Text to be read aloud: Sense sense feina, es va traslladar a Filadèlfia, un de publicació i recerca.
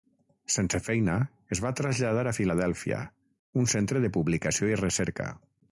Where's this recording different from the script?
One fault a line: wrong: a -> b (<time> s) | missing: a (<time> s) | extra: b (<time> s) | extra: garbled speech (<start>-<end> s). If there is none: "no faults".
missing: sense (0.8 s)
extra: centre (3.8 s)